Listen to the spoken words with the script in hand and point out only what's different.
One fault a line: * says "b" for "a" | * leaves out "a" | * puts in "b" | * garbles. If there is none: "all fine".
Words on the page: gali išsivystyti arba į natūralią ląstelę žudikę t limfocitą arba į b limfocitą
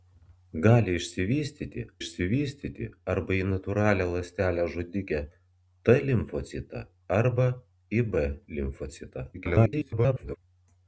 * puts in "išsivystyti"
* garbles